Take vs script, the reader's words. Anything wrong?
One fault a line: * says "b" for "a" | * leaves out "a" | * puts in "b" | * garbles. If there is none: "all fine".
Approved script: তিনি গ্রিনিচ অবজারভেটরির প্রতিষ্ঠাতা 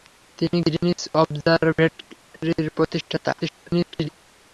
* garbles